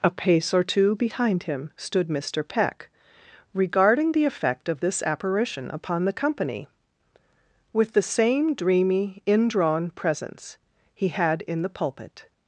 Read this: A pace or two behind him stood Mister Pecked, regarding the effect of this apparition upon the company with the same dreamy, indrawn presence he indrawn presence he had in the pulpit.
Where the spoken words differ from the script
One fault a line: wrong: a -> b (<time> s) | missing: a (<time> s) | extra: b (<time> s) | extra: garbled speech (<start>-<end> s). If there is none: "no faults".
wrong: Pecked -> Peck (2.4 s)
missing: indrawn presence he (11.1 s)